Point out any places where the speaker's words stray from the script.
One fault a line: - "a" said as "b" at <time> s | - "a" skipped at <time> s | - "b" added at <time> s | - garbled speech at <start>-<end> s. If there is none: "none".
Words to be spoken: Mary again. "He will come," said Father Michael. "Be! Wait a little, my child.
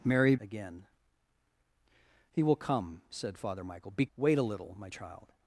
none